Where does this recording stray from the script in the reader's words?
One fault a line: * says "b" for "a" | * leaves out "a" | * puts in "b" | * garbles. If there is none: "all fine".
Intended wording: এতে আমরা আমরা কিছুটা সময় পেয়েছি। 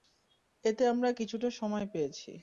* leaves out "আমরা"